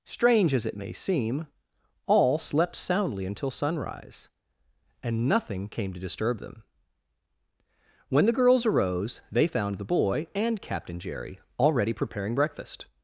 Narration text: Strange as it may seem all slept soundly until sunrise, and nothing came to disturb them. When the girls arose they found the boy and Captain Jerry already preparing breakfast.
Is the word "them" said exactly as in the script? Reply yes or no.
yes